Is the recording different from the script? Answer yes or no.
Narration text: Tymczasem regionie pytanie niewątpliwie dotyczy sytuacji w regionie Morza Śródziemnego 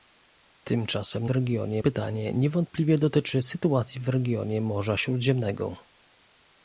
no